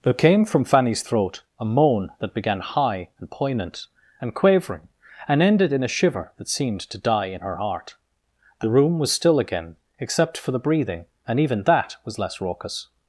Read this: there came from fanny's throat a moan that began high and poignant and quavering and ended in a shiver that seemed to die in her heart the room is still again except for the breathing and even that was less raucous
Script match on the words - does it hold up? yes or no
no